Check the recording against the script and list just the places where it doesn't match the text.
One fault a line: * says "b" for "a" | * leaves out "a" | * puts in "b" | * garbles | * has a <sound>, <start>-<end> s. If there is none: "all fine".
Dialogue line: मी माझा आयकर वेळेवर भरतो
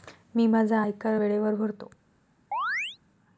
* has a chirp, 2.5-3.0 s